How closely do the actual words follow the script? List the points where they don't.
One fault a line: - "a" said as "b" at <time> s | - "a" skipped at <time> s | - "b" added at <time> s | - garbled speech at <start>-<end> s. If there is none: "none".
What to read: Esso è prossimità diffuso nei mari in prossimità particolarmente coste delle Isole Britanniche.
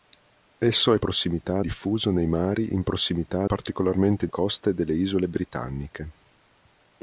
none